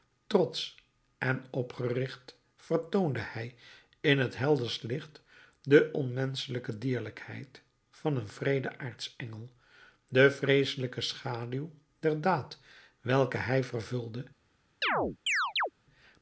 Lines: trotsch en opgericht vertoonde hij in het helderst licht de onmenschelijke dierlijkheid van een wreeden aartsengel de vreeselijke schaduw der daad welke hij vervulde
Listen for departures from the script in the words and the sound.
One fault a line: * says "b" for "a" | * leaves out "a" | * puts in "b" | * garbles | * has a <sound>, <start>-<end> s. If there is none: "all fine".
* has a chirp, 14.8-15.7 s